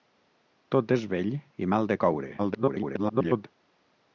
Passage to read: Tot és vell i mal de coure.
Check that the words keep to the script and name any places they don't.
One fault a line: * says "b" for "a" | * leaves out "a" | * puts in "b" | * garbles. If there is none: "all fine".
* garbles